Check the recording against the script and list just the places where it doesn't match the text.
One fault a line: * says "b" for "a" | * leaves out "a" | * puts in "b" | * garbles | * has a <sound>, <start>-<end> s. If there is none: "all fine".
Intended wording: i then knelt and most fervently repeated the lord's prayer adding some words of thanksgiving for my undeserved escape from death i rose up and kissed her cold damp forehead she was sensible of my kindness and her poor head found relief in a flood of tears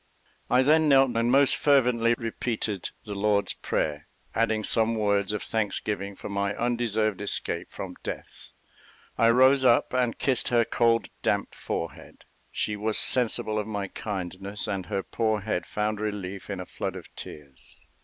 all fine